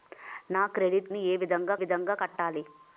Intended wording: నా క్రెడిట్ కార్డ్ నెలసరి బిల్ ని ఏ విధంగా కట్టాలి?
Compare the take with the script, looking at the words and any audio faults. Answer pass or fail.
fail